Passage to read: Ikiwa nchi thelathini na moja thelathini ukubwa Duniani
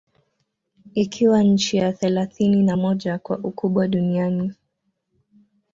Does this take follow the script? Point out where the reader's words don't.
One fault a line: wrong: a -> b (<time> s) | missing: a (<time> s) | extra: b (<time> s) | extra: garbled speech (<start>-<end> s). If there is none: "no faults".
extra: ya (1.8 s)
wrong: thelathini -> kwa (3.2 s)